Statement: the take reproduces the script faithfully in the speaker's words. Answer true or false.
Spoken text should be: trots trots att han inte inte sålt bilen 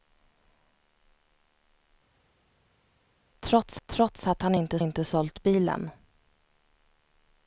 true